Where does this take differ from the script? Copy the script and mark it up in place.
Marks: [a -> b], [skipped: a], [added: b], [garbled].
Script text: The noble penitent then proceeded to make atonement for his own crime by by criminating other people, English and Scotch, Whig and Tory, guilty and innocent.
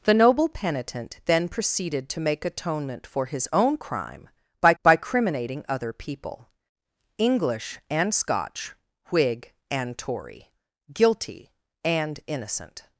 The noble penitent then proceeded to make atonement for his own crime by by criminating other people, English and Scotch, Whig and Tory, guilty and innocent.